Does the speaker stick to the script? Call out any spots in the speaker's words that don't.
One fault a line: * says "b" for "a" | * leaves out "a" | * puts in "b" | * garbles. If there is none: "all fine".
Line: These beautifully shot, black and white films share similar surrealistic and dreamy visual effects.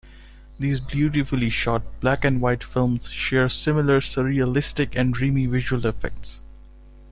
all fine